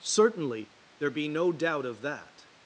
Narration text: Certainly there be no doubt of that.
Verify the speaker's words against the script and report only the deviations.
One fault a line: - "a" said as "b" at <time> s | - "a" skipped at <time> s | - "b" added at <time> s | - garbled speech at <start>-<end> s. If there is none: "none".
none